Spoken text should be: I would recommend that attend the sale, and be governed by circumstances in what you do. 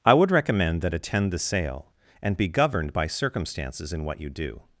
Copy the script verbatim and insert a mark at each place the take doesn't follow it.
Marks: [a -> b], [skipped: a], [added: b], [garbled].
I would recommend that attend the sale, and be governed by circumstances in what you do.